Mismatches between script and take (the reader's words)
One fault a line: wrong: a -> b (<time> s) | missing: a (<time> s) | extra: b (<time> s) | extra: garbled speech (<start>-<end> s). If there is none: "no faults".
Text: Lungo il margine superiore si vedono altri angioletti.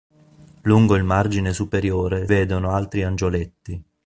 missing: si (2.3 s)